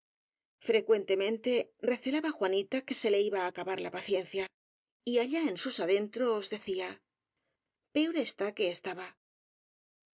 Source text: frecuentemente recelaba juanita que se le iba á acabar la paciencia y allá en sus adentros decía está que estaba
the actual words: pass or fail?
fail